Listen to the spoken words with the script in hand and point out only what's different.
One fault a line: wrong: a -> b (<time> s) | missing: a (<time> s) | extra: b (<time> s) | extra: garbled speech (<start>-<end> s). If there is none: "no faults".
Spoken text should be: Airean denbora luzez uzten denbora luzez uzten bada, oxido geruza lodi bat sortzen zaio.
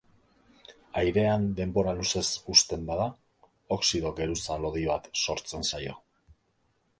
missing: denbora luzez uzten (2.9 s)